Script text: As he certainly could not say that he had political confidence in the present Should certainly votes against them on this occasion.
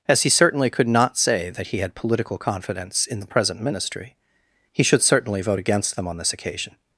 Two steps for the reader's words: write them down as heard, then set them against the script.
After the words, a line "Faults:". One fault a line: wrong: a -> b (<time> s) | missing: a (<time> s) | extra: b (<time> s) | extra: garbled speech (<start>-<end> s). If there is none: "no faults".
As he certainly could not say that he had political confidence in the present Ministry, he should certainly vote against them on this occasion.
Faults:
extra: Ministry he (3.6 s)
wrong: votes -> vote (5.4 s)